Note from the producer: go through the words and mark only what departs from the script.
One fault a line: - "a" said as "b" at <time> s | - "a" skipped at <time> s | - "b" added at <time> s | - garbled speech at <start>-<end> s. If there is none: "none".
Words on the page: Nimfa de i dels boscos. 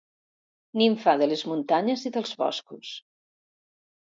- "les muntanyes" added at 1.3 s